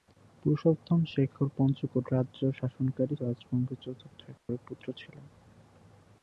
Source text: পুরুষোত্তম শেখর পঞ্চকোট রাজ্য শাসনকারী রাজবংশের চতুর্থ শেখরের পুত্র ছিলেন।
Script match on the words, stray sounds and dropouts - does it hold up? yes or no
no